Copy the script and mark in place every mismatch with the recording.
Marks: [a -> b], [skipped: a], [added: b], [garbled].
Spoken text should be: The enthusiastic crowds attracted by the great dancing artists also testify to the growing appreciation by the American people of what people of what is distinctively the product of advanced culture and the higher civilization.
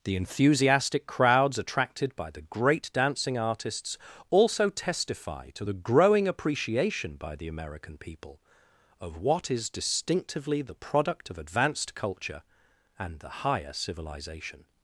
The enthusiastic crowds attracted by the great dancing artists also testify to the growing appreciation by the American people of what [skipped: people of what] is distinctively the product of advanced culture and the higher civilization.